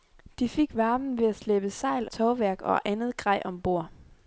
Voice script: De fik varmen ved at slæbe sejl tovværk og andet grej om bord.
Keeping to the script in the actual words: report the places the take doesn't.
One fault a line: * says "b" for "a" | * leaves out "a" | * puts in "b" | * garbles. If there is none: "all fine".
all fine